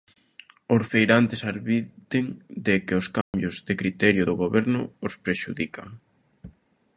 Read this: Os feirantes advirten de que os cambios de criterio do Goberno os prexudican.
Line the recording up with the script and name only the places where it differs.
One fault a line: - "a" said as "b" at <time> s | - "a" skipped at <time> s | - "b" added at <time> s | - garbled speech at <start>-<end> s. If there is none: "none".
none